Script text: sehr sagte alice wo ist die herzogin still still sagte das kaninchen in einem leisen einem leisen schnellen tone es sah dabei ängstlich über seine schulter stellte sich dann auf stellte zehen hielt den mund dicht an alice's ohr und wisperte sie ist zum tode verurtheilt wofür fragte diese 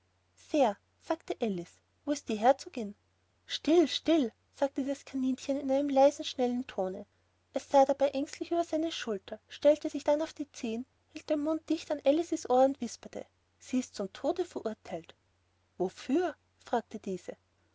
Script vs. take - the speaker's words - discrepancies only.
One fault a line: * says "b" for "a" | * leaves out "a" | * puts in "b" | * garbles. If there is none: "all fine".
* leaves out "einem leisen"
* says "die" for "stellte"